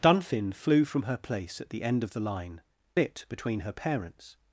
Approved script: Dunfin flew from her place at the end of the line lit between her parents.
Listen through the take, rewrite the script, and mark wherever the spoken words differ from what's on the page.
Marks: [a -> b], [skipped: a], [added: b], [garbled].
Dunfin flew from her place at the end of the line lit between her parents.